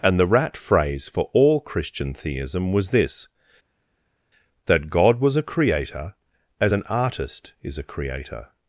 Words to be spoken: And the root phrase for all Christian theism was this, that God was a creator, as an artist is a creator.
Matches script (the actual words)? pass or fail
fail